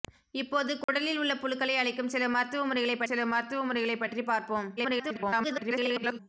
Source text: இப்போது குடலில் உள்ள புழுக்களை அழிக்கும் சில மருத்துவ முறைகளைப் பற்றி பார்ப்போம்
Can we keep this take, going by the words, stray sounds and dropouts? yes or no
no